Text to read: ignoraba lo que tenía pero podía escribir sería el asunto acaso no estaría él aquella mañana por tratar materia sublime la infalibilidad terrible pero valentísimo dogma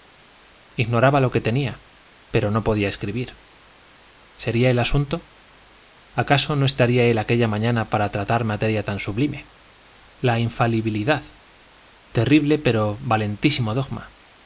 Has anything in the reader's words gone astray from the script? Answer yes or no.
yes